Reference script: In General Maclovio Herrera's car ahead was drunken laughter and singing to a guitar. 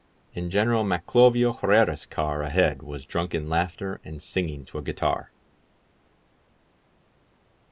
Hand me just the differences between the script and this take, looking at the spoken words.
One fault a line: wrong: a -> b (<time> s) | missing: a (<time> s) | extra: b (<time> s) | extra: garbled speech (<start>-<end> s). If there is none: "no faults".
no faults